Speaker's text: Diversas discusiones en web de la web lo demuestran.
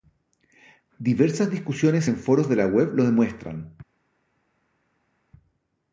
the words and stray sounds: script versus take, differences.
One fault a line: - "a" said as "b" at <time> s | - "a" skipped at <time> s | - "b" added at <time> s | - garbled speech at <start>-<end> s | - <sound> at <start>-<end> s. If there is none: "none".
- "web" said as "foros" at 2.1 s